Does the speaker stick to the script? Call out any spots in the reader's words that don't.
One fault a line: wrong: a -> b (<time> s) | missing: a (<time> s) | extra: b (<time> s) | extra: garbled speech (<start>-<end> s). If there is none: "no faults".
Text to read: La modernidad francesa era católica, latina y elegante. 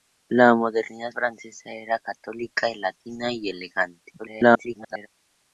extra: garbled speech (4.2-5.1 s)